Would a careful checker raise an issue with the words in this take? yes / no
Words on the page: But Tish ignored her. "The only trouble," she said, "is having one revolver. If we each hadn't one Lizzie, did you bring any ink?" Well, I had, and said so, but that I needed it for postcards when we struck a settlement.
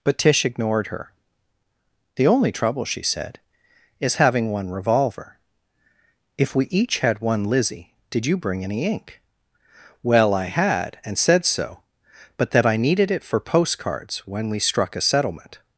yes